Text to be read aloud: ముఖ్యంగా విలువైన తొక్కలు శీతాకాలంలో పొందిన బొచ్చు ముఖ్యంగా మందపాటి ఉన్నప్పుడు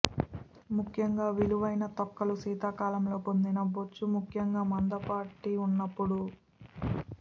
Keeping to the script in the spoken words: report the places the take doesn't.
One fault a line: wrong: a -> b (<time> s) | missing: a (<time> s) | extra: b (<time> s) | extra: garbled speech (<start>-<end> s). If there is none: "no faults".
no faults